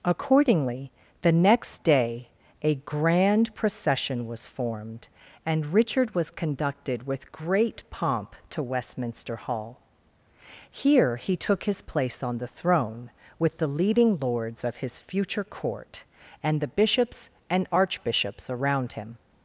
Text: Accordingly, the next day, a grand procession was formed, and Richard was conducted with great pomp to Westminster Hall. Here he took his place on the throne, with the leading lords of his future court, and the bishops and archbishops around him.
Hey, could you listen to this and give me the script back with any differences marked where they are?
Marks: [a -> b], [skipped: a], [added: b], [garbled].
Accordingly, the next day, a grand procession was formed, and Richard was conducted with great pomp to Westminster Hall. Here he took his place on the throne, with the leading lords of his future court, and the bishops and archbishops around him.